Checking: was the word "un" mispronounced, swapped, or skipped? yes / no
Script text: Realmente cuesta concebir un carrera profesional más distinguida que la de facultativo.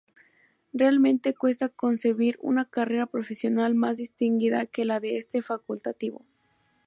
yes